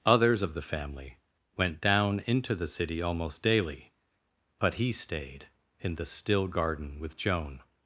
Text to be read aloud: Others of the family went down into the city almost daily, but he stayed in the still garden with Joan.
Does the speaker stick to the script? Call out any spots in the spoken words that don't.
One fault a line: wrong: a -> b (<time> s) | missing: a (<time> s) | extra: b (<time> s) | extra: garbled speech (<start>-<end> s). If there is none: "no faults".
no faults